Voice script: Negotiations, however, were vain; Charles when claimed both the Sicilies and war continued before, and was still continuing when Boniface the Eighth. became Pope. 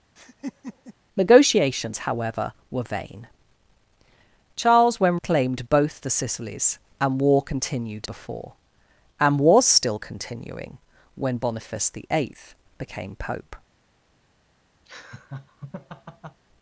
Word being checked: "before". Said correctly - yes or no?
yes